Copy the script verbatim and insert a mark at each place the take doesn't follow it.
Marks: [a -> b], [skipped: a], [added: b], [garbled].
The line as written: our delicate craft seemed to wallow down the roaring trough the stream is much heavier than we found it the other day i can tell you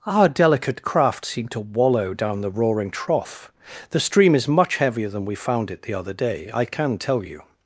our delicate craft seemed to wallow down the roaring trough the stream is much heavier than we found it the other day i can tell you